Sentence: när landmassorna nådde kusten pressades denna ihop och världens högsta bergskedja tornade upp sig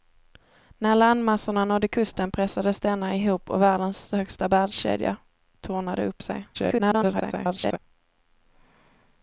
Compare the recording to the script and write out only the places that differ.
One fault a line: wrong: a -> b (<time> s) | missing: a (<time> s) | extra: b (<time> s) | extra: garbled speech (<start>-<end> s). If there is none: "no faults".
extra: garbled speech (6.5-7.8 s)